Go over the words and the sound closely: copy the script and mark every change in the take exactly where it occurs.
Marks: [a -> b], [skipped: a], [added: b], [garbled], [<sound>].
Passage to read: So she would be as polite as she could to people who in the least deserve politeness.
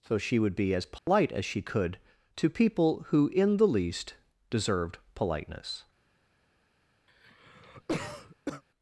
So she would be as polite [dropout] as she could to people who in the least [deserve -> deserved] politeness. [cough]